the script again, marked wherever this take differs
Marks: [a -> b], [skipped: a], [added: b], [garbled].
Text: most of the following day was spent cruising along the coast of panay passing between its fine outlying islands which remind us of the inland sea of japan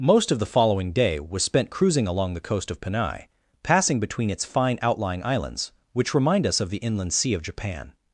most of the following day was spent cruising along the coast of panay passing between its fine outlying islands which remind us of the inland sea of japan